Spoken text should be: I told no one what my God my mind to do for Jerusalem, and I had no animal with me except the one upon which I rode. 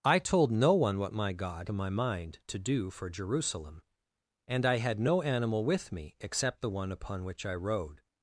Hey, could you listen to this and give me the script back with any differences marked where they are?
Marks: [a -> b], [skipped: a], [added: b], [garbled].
I told no one what my God my mind to do for Jerusalem, and I had no animal with me except the one upon which I rode.